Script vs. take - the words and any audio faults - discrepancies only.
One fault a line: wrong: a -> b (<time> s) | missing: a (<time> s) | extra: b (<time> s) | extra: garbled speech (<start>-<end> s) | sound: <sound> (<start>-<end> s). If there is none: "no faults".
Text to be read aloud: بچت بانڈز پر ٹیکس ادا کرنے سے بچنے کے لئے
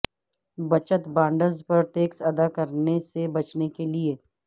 no faults